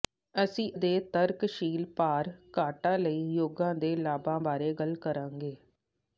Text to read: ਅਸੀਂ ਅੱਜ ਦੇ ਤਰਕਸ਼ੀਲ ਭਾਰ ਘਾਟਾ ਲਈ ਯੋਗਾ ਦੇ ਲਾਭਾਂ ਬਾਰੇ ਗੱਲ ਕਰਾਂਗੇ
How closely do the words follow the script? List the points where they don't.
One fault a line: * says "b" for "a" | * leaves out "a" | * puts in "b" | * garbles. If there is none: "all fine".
* leaves out "ਅੱਜ"